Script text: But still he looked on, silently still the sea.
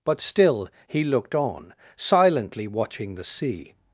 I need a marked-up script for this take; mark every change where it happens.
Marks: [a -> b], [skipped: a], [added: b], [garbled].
But still he looked on, silently [still -> watching] the sea.